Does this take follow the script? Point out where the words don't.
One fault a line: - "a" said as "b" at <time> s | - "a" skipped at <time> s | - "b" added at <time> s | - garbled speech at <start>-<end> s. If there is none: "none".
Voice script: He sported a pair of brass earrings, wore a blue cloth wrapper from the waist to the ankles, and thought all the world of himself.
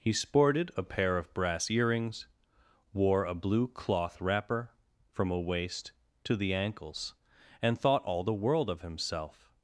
- "the" said as "a" at 5.3 s